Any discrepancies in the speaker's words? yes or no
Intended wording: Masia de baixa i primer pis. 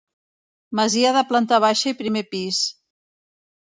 yes